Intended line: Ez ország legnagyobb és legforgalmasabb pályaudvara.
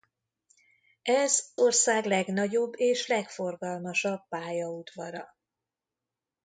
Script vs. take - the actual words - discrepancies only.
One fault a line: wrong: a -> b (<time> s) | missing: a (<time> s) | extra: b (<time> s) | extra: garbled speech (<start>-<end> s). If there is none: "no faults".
no faults